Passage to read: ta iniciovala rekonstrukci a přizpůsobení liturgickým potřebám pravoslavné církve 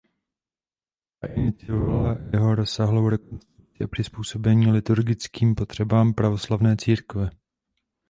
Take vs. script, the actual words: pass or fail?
fail